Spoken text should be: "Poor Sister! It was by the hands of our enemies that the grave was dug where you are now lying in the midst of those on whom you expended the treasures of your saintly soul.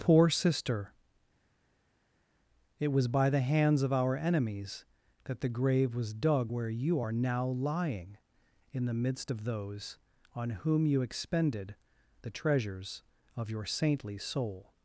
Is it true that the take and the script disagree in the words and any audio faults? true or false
false